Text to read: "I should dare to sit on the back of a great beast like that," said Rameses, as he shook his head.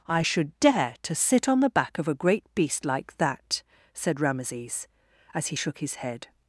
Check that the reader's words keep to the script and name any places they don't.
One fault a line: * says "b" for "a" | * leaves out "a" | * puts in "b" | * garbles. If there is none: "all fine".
all fine